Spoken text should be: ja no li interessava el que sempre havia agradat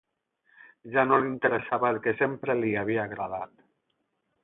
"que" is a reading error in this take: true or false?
false